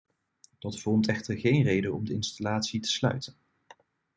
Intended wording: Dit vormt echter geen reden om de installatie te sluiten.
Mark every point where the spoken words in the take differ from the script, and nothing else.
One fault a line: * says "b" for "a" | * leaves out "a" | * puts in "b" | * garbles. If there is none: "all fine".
* says "Dat" for "Dit"